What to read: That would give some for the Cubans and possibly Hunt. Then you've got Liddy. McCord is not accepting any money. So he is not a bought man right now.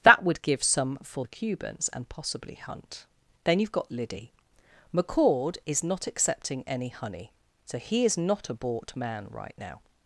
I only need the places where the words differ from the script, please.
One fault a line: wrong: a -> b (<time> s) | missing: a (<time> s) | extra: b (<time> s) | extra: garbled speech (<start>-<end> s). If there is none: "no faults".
wrong: money -> honey (6.9 s)